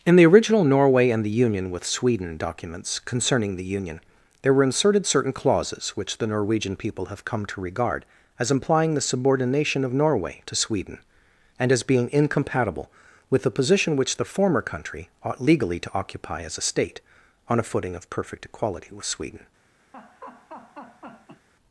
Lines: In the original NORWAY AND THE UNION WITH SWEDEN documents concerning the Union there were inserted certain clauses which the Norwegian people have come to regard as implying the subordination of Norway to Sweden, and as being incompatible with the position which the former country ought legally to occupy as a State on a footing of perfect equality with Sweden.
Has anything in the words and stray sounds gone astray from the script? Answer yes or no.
yes